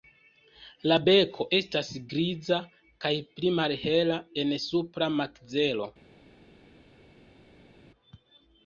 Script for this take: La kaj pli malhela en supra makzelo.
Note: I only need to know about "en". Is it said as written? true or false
true